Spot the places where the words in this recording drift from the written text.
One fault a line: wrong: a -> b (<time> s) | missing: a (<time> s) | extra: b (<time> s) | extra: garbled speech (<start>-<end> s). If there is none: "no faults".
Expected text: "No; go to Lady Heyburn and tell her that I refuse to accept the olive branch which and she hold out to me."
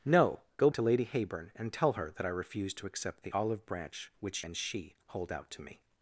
no faults